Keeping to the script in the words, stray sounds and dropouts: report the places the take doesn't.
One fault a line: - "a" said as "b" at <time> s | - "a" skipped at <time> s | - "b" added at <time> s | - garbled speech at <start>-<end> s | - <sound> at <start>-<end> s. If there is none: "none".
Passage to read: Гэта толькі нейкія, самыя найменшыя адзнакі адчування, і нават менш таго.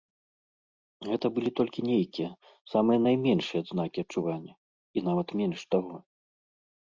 - "былі" added at 1.4 s